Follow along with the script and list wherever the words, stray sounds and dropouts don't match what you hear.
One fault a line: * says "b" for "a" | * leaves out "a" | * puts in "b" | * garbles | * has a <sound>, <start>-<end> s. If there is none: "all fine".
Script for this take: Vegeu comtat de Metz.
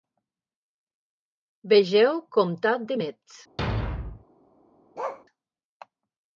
* has a thud, 3.6-4.2 s
* has a bark, 4.9-5.2 s